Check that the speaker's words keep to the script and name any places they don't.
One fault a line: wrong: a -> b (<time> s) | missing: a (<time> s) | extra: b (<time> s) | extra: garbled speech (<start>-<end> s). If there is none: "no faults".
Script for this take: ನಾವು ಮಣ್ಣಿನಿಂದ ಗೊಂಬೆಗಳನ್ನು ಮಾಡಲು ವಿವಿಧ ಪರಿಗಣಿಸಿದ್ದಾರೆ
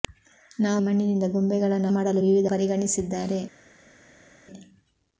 no faults